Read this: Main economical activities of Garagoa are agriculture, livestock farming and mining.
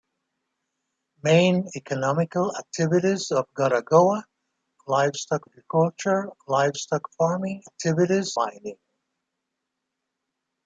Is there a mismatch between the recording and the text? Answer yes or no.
yes